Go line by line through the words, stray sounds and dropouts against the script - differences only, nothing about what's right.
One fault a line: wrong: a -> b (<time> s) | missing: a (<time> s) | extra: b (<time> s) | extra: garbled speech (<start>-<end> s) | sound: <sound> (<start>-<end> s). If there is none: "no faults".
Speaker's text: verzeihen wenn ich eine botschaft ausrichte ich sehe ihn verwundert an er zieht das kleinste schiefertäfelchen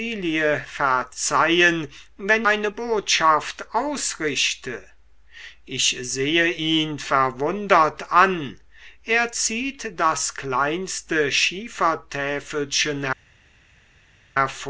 missing: ich (2.5 s)